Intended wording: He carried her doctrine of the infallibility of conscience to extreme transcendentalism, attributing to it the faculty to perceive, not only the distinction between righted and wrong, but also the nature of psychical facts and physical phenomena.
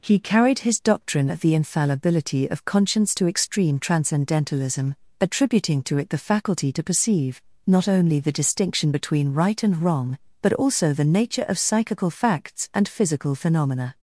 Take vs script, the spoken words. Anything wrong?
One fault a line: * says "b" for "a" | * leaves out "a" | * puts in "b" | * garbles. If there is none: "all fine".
* says "his" for "her"
* says "right" for "righted"